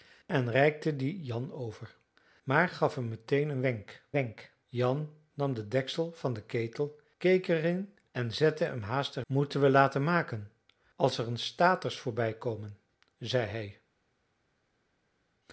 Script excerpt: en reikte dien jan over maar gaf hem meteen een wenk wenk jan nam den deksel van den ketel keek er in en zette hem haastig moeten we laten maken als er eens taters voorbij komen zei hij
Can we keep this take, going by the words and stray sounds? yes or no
yes